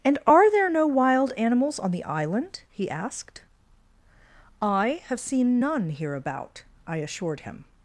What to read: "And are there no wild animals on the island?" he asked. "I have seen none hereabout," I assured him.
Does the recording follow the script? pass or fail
pass